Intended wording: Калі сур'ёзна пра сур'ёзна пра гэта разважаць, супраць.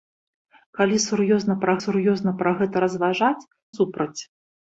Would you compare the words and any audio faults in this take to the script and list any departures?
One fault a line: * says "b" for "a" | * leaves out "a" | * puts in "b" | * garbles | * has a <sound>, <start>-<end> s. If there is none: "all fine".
all fine